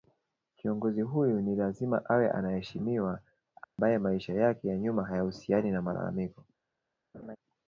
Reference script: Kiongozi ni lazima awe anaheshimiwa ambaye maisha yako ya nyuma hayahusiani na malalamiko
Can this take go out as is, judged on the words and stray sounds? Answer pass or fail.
fail